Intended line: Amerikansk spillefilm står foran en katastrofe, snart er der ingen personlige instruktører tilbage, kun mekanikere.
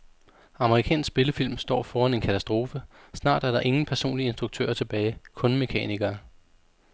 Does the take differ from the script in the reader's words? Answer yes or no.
no